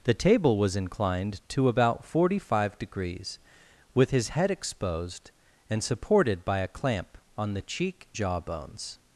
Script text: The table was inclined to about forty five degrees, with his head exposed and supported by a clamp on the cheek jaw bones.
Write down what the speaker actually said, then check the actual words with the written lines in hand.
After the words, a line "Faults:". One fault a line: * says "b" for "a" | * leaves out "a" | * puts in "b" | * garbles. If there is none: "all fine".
The table was inclined to about forty five degrees, with his head exposed and supported by a clamp on the cheek jaw bones.
Faults:
all fine